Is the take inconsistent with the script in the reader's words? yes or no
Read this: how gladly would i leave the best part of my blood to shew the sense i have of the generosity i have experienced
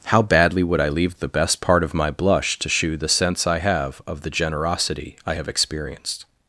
yes